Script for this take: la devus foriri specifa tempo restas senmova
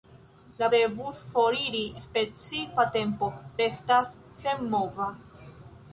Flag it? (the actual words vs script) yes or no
no